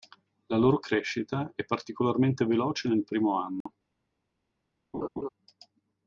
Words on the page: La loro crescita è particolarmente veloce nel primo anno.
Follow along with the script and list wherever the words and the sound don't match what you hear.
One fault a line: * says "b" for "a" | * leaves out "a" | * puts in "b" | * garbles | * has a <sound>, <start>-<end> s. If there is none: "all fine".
* has a dropout, 3.6-3.7 s
* has a laugh, 4.9-5.3 s